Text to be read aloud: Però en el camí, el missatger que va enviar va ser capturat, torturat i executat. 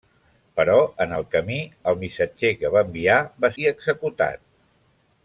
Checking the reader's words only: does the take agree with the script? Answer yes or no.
no